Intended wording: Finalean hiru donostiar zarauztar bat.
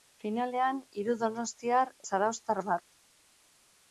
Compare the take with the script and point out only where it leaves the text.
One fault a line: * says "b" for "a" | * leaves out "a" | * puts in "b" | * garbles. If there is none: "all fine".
all fine